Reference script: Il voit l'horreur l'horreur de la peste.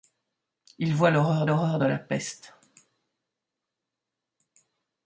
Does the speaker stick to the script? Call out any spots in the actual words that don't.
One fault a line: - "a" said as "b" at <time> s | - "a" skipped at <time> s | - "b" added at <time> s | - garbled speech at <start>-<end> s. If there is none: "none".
none